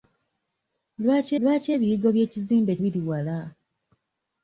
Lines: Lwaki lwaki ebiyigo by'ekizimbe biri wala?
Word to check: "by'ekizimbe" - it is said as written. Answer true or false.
true